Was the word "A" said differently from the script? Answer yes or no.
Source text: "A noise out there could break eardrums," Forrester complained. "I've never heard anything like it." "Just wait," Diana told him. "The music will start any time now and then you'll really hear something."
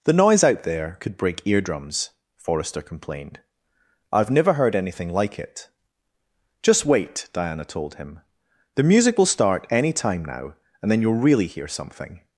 yes